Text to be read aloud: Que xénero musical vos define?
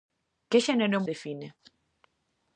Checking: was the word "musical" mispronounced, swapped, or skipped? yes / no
yes